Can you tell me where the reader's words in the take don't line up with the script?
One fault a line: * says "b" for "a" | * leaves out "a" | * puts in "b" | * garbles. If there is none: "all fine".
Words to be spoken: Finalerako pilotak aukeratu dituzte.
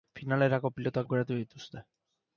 all fine